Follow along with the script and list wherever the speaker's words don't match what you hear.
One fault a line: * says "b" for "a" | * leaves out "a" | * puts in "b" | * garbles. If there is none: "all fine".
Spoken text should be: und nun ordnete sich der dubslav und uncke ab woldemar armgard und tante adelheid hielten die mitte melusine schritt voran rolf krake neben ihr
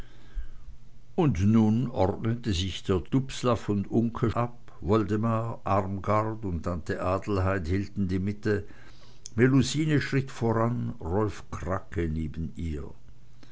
all fine